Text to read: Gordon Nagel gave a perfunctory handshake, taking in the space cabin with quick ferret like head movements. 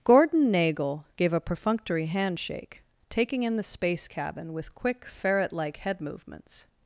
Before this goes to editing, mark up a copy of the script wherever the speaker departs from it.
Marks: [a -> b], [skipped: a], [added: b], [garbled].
Gordon Nagel gave a perfunctory handshake, taking in the space cabin with quick ferret like head movements.